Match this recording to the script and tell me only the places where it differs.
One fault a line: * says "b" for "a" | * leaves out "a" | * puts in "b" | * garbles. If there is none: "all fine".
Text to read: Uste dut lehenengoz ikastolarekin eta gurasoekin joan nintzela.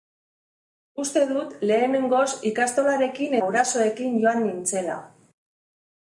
* leaves out "eta"